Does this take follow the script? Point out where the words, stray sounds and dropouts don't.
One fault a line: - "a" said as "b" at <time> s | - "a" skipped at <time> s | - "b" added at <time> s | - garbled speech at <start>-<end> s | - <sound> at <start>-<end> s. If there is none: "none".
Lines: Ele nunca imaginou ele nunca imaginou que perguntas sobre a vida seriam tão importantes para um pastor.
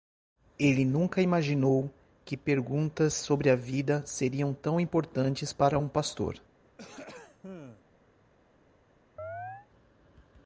- "ele nunca imaginou" skipped at 1.9 s
- throat clearing at 6.6-7.9 s
- chirp at 9.2-9.7 s